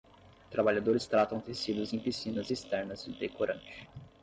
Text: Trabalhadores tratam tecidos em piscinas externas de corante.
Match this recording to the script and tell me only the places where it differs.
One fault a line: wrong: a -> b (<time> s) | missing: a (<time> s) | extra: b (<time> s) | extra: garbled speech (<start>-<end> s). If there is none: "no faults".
no faults